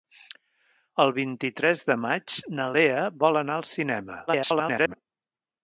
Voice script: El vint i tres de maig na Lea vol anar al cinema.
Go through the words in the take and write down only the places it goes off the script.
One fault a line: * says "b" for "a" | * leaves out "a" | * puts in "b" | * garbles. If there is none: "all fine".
* garbles